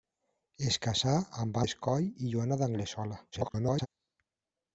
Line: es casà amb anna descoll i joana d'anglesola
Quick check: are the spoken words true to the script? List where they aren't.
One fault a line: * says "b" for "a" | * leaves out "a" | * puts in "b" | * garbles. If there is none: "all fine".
* leaves out "anna"
* garbles